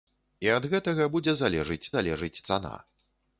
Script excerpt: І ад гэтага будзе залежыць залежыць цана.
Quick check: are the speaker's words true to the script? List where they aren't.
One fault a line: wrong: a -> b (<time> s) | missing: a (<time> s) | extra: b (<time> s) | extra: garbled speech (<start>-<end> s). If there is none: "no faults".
no faults